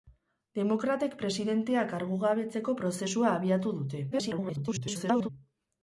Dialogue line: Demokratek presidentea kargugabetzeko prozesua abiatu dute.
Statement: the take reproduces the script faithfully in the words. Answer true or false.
false